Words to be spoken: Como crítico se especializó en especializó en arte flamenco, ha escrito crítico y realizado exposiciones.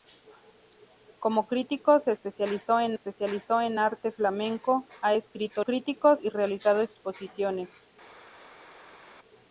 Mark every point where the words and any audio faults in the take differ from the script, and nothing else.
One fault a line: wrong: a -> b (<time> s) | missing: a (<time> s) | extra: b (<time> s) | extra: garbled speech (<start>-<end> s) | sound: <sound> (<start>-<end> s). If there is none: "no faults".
no faults